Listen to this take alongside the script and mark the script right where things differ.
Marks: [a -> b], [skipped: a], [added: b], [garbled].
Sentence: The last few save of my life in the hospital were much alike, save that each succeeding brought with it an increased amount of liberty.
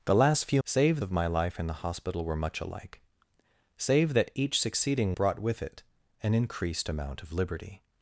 The last few save of my life in the hospital were much alike, save that each succeeding brought with it an increased amount of liberty.